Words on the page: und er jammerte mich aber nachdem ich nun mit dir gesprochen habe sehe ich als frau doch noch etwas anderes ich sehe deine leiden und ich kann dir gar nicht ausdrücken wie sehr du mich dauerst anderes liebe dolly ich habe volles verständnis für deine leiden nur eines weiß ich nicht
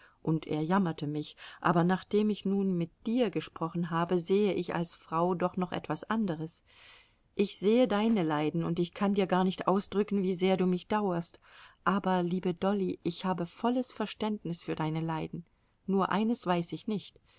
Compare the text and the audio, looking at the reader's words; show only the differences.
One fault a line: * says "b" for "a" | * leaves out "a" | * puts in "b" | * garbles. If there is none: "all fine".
* says "aber" for "anderes"